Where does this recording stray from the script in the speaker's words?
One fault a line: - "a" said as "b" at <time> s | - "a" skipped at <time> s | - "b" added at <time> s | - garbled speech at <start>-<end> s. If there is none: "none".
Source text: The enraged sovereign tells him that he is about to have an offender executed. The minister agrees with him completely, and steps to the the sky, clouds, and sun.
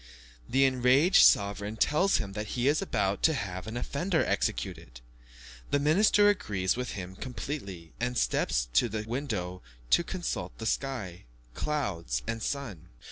- "window to consult" added at 9.1 s